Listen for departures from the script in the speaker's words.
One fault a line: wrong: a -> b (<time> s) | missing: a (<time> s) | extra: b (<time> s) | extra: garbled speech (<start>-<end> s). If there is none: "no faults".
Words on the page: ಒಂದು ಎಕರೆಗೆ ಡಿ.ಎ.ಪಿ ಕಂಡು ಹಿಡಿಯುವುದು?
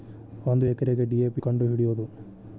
no faults